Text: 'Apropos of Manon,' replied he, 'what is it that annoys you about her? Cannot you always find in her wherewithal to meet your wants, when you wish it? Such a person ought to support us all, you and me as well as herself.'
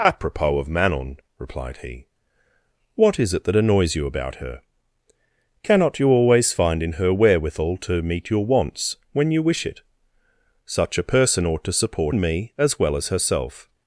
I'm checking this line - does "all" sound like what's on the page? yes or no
no